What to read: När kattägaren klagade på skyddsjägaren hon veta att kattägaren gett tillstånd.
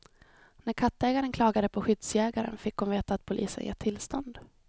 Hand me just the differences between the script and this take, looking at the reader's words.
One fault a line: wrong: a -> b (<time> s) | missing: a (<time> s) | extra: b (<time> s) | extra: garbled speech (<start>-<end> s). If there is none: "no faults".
extra: fick (2.6 s)
wrong: kattägaren -> polisen (3.2 s)